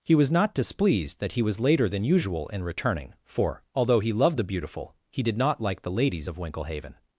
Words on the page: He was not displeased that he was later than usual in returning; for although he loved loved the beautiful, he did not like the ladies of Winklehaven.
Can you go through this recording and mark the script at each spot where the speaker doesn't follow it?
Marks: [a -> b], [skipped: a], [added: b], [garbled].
He was not displeased that he was later than usual in returning; for although he loved [skipped: loved] the beautiful, he did not like the ladies of Winklehaven.